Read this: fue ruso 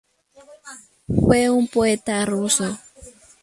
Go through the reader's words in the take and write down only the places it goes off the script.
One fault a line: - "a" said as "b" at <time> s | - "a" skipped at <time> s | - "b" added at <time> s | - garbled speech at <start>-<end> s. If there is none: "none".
- "un poeta" added at 1.5 s